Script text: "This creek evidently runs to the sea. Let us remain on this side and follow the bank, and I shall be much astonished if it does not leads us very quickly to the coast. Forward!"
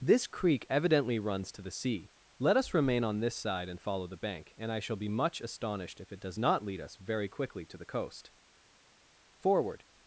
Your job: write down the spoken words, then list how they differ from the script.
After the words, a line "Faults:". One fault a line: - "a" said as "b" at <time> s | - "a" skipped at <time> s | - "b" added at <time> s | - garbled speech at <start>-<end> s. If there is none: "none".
"This creek evidently runs to the sea. Let us remain on this side and follow the bank, and I shall be much astonished if it does not lead us very quickly to the coast. Forward!"
Faults:
- "leads" said as "lead" at 6.6 s